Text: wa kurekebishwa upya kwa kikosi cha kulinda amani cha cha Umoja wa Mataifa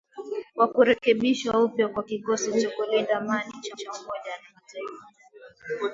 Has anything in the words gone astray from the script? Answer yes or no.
no